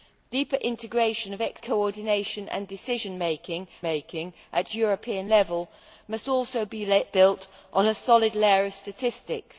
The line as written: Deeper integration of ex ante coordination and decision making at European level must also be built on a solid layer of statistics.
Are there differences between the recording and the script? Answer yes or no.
yes